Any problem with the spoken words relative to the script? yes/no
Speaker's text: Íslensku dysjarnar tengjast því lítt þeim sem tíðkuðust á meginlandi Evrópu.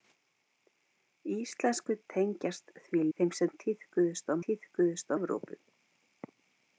yes